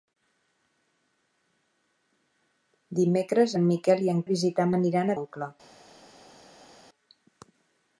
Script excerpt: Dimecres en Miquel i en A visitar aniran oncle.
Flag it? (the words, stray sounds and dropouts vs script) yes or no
no